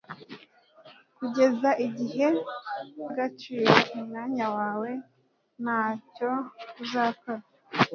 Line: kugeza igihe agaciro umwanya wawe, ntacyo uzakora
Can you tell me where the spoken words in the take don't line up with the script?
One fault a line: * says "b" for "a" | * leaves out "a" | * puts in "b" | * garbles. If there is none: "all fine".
all fine